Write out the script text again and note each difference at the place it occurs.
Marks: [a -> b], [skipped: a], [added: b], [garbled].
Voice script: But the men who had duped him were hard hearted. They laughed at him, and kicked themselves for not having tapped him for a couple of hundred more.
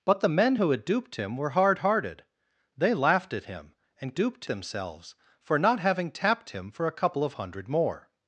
But the men who had duped him were hard hearted. They laughed at him, and [kicked -> duped] themselves for not having tapped him for a couple of hundred more.